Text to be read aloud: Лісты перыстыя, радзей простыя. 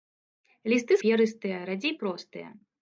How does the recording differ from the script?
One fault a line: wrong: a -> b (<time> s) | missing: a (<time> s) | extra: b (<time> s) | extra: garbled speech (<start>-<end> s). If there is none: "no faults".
no faults